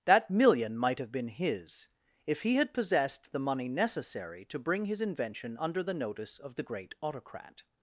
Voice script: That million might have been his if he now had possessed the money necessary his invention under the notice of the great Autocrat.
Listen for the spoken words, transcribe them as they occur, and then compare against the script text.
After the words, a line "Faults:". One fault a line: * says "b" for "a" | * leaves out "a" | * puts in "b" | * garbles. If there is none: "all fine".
That million might have been his if he had possessed the money necessary to bring his invention under the notice of the great Autocrat.
Faults:
* leaves out "now"
* puts in "to bring"